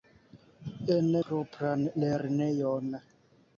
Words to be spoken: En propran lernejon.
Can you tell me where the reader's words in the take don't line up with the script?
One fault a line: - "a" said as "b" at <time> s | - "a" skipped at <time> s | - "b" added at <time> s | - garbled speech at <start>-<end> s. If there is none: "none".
none